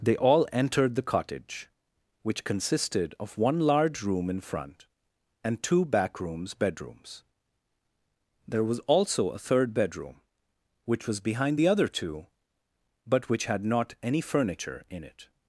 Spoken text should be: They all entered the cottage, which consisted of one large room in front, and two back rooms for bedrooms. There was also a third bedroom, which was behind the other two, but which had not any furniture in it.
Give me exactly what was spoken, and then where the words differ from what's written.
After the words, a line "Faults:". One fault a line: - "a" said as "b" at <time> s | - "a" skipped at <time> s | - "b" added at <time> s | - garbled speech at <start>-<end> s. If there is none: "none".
They all entered the cottage, which consisted of one large room in front, and two back rooms bedrooms. There was also a third bedroom, which was behind the other two, but which had not any furniture in it.
Faults:
- "for" skipped at 6.5 s